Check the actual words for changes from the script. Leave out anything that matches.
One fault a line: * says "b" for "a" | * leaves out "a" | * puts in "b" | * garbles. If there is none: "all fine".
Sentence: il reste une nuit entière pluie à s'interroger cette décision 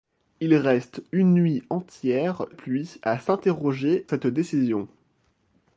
all fine